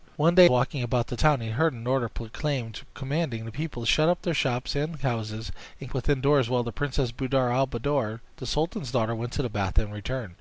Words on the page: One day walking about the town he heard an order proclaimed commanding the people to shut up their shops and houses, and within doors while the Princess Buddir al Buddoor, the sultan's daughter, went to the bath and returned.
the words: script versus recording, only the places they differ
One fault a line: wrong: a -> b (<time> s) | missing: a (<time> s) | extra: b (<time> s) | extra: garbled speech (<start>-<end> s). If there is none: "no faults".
no faults